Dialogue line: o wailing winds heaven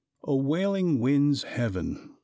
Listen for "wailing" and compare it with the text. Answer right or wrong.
right